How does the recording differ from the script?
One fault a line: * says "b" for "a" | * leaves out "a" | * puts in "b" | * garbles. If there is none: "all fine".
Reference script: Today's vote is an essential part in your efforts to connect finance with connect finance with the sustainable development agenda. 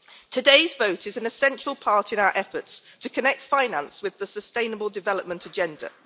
* says "our" for "your"
* leaves out "connect finance with"